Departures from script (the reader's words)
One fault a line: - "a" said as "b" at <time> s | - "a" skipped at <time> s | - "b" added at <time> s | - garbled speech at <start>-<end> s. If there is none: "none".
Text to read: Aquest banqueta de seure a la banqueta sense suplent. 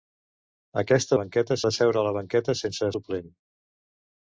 none